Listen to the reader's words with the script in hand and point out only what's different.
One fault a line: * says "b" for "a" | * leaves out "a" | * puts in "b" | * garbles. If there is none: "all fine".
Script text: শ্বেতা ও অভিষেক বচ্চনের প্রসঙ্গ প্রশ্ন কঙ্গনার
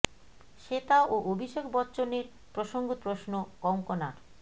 all fine